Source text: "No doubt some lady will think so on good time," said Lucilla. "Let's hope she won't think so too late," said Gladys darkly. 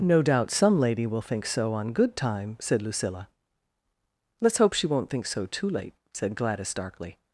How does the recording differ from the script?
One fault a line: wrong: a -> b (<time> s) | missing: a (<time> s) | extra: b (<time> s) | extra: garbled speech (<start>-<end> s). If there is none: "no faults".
no faults